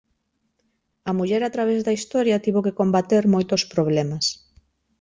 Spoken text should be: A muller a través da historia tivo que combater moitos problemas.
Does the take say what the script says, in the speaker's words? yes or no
yes